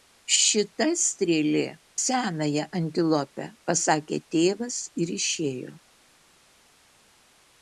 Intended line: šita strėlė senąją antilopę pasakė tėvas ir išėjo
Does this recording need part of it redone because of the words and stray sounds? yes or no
no